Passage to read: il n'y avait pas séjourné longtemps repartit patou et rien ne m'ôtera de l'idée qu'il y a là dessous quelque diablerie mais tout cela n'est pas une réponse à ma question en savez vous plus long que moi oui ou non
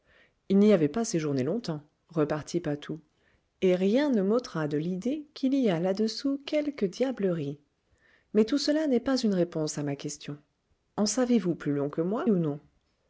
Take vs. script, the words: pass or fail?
fail